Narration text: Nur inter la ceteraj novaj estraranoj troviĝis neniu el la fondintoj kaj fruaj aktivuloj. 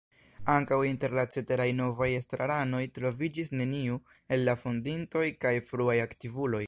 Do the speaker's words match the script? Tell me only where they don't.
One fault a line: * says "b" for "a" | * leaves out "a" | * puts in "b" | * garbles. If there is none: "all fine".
* says "Ankaŭ" for "Nur"